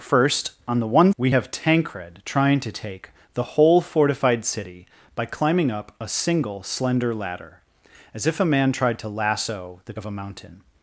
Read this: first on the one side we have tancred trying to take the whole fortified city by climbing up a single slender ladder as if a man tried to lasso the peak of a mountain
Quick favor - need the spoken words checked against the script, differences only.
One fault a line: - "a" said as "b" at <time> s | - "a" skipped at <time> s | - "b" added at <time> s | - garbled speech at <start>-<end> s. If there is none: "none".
- "side" skipped at 1.1 s
- "peak" skipped at 9.9 s